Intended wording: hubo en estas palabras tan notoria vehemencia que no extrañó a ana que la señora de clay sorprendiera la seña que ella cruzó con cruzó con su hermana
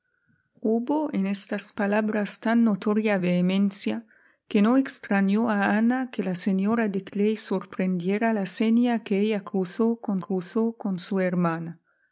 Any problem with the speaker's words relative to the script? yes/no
no